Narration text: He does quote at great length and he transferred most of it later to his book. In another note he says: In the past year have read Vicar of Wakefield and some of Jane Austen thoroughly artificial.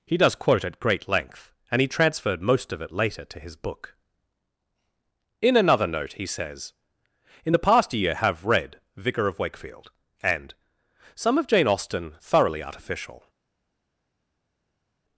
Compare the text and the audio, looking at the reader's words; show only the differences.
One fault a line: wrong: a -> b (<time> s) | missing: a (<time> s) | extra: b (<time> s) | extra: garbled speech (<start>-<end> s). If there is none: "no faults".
no faults